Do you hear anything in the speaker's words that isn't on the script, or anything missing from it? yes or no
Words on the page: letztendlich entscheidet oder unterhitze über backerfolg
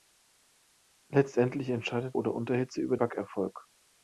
no